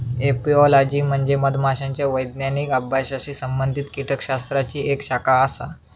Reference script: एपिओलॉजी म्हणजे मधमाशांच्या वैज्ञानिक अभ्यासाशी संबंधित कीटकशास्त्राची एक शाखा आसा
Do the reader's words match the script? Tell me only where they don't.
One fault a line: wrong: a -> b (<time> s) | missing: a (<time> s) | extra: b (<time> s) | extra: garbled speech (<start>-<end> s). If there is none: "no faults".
no faults